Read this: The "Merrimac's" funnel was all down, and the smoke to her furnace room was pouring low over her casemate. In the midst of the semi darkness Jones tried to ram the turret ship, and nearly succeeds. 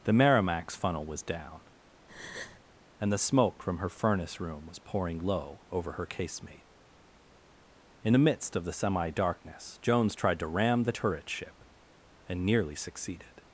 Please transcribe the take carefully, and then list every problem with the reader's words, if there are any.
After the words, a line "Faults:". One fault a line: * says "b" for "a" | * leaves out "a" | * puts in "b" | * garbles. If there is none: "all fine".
The "Merrimac's" funnel was down, and the smoke from her furnace room was pouring low over her casemate. In the midst of the semi darkness Jones tried to ram the turret ship, and nearly succeeded.
Faults:
* leaves out "all"
* says "from" for "to"
* says "succeeded" for "succeeds"